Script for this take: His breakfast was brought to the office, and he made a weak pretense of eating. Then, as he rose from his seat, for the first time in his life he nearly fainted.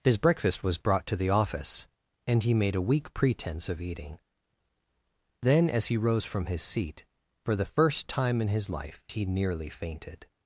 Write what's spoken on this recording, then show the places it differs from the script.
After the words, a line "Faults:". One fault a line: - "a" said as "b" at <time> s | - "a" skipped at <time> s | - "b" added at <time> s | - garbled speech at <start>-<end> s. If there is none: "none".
His breakfast was brought to the office, and he made a weak pretense of eating. Then, as he rose from his seat, for the first time in his life he nearly fainted.
Faults:
none